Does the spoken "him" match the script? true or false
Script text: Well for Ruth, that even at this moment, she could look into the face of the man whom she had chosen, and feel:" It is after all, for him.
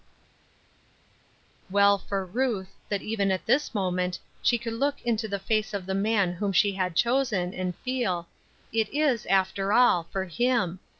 true